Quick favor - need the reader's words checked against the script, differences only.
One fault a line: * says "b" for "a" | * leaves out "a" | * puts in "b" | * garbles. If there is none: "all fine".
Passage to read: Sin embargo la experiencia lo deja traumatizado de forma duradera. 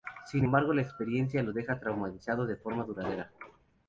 all fine